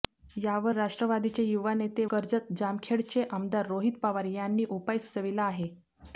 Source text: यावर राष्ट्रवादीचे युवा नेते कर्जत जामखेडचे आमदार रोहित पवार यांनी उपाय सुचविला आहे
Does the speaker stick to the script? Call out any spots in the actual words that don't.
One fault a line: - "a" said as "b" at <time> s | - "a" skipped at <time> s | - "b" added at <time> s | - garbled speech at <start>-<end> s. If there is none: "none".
none